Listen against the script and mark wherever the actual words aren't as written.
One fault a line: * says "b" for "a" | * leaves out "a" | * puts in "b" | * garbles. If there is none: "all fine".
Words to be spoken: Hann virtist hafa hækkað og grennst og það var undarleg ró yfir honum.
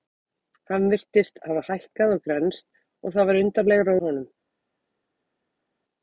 * leaves out "yfir"